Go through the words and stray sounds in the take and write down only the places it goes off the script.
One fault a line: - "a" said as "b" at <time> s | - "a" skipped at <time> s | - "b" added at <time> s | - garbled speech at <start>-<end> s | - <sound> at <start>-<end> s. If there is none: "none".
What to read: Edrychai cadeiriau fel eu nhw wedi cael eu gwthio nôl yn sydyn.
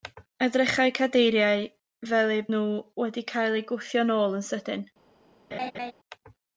- laugh at 5.5-5.9 s